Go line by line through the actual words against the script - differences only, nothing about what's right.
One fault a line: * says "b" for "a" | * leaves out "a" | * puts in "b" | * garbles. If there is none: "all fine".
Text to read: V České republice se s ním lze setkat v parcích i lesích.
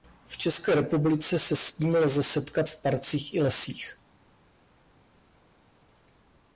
all fine